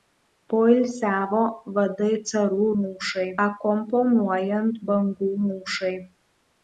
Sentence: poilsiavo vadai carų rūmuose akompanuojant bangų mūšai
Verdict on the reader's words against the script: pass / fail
fail